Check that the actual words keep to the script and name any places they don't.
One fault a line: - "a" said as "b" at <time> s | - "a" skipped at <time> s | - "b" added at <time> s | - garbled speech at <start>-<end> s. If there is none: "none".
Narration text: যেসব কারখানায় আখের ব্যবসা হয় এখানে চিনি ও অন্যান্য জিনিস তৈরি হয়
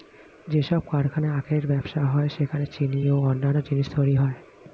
- "এখানে" said as "সেখানে" at 2.3 s